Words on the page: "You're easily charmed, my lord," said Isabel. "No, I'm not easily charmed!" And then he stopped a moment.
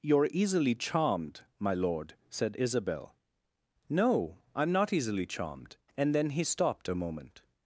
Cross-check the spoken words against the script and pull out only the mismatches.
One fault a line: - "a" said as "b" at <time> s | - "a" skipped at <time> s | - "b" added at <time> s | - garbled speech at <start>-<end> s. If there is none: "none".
none